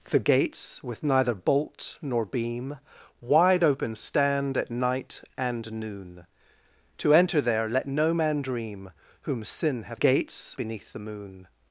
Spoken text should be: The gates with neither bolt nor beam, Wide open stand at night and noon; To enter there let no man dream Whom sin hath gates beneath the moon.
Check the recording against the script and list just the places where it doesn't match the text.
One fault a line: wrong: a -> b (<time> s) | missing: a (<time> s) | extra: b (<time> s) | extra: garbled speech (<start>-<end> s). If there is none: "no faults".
no faults